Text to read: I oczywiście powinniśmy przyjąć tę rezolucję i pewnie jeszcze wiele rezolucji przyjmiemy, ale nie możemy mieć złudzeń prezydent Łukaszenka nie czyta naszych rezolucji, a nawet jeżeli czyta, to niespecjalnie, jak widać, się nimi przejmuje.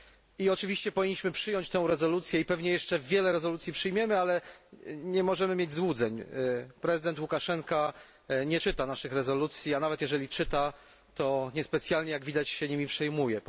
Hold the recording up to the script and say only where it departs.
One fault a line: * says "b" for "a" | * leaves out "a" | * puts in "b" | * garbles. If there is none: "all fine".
all fine